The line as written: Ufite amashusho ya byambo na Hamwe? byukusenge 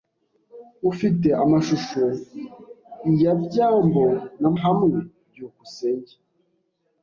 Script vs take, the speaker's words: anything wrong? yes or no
no